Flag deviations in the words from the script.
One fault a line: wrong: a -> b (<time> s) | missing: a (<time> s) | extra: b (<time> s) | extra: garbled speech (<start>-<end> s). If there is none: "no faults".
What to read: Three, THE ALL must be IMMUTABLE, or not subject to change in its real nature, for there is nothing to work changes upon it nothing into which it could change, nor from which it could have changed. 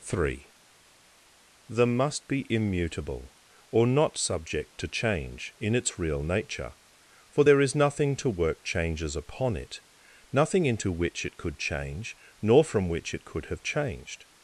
missing: ALL (1.9 s)